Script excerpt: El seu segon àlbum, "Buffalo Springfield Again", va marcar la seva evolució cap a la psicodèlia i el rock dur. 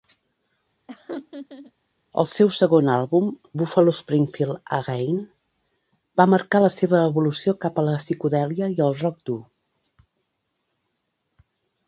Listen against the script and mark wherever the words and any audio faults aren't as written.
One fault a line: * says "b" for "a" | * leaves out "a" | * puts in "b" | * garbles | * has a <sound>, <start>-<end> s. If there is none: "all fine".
* has a laugh, 0.9-1.7 s